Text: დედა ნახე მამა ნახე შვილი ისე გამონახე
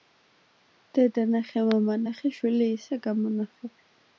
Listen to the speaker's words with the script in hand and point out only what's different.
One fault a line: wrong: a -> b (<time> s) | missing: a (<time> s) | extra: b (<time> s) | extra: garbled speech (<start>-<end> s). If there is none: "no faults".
no faults